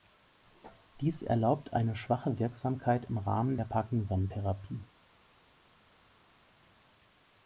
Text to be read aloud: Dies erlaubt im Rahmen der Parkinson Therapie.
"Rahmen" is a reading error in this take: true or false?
false